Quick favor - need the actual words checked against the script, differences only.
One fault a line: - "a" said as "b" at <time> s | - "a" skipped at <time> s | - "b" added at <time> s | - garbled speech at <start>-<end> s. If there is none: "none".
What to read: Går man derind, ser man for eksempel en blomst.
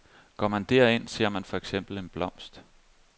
none